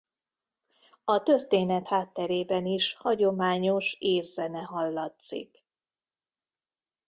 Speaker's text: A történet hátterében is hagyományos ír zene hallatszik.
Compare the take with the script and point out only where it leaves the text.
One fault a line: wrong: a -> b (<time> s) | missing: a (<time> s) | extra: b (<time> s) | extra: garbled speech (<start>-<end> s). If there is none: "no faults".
no faults